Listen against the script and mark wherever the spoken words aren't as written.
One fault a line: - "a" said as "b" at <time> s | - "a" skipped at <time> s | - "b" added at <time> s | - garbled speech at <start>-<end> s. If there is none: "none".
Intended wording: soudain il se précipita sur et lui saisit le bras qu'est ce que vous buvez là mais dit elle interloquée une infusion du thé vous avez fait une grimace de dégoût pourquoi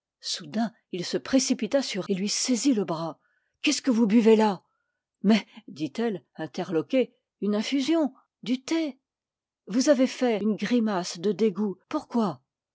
none